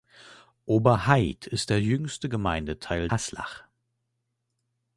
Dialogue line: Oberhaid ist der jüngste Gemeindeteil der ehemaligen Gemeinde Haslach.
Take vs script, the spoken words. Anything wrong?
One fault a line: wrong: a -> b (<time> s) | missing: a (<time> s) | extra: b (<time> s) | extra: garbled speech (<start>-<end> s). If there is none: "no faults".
missing: der ehemaligen Gemeinde (3.1 s)